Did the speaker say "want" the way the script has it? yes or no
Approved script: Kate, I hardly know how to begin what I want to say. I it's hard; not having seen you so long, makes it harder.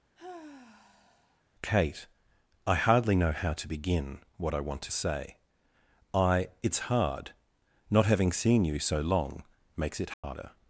yes